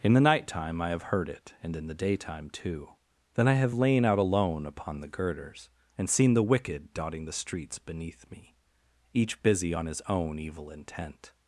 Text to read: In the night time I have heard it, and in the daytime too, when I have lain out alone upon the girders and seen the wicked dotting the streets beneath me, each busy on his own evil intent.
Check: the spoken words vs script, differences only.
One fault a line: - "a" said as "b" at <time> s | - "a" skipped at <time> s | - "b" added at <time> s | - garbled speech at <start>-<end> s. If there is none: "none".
- "when" said as "then" at 3.4 s